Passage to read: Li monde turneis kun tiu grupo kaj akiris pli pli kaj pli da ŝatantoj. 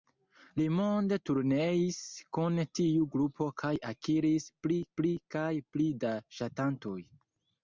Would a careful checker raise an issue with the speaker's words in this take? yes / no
no